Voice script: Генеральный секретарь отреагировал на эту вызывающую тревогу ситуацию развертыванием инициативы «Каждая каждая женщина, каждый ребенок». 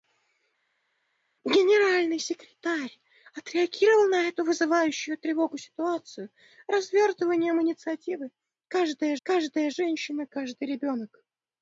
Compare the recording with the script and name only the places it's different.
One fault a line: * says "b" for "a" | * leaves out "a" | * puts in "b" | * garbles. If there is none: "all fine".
all fine